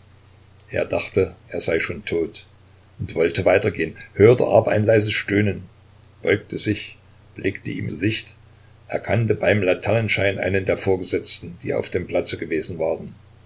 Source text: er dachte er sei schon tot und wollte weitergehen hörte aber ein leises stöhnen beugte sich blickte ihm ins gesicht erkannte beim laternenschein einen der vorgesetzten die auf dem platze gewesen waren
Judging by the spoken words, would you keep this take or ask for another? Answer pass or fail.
fail